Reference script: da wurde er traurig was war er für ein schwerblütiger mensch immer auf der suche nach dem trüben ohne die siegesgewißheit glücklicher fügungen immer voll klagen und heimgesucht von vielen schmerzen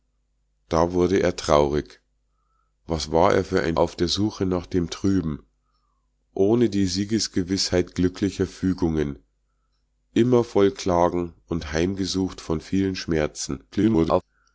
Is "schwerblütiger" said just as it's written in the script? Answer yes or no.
no